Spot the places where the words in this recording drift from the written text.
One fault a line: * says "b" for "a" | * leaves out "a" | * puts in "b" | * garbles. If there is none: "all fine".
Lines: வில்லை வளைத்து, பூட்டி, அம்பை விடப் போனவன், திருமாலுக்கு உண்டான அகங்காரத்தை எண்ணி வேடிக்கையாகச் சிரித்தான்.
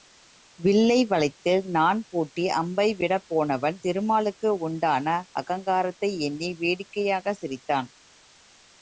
* puts in "நாண்"